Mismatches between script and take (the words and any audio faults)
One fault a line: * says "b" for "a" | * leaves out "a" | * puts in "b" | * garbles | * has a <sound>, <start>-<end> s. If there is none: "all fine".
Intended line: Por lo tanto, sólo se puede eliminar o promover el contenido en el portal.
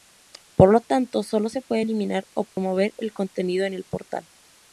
* has a dropout, 2.5-2.6 s